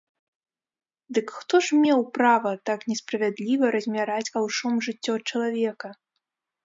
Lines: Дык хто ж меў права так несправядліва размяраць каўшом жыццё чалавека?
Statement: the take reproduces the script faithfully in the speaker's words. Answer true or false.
true